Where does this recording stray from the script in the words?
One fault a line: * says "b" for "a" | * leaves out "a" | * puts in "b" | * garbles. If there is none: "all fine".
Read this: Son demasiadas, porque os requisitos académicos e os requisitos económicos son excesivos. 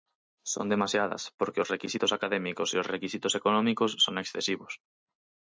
all fine